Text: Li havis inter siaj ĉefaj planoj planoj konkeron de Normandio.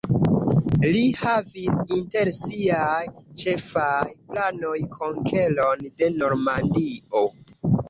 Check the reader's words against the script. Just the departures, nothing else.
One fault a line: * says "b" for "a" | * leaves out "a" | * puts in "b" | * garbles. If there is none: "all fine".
* leaves out "planoj"